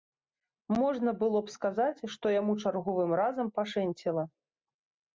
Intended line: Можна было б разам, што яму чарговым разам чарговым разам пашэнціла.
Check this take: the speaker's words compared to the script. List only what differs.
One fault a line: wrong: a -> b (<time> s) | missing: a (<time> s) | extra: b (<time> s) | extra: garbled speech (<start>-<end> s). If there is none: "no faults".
wrong: разам -> сказаць (1.6 s)
missing: чарговым разам (3.5 s)